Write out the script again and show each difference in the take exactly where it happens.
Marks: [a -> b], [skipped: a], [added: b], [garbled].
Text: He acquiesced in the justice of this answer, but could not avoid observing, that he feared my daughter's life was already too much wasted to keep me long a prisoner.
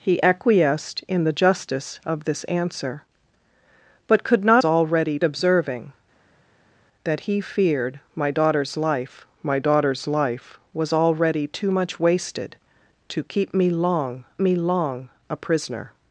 He acquiesced in the justice of this answer, but could not [avoid -> already] observing, that he feared my daughter's life [added: my daughter's life] was already too much wasted to keep me long [added: me long] a prisoner.